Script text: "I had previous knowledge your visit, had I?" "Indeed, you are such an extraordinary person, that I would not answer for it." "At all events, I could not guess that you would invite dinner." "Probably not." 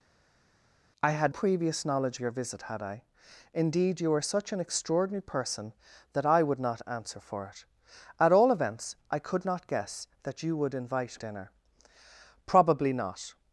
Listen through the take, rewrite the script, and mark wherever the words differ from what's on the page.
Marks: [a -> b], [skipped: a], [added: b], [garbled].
"I had previous knowledge your visit, had I?" "Indeed, you are such an extraordinary person, that I would not answer for it." "At all events, I could not guess that you would invite dinner." "Probably not."